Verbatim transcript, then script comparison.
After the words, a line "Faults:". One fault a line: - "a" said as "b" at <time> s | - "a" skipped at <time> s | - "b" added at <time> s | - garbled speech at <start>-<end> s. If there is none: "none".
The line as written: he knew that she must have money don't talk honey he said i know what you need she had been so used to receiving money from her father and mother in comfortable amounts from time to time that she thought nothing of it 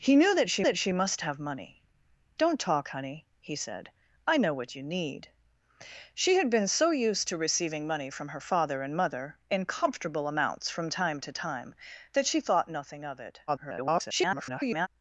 he knew that she that she must have money don't talk honey he said i know what you need she had been so used to receiving money from her father and mother in comfortable amounts from time to time that she thought nothing of it [garbled]
Faults:
- "that she" added at 0.6 s
- garbled speech at 13.5-14.9 s